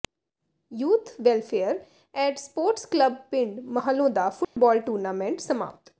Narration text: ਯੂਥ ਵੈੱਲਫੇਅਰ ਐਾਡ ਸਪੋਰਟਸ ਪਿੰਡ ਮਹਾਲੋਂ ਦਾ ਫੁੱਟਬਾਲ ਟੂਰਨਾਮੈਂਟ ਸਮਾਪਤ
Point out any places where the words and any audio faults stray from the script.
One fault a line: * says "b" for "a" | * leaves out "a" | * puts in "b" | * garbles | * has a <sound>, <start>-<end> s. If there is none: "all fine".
* puts in "ਕਲੱਬ"
* has a dropout, 4.4-4.6 s